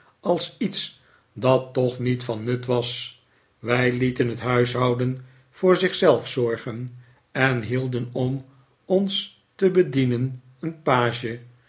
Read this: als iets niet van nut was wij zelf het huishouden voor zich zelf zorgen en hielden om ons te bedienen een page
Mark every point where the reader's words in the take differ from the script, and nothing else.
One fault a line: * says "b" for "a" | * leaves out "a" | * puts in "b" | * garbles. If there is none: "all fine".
* puts in "dat toch"
* says "lieten" for "zelf"